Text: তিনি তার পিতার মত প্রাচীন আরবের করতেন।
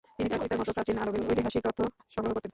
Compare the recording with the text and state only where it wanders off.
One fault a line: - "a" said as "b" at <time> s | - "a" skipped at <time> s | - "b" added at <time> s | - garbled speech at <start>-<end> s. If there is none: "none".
- "ঐতিহাসিক তথ্য সংগ্রহ" added at 1.3 s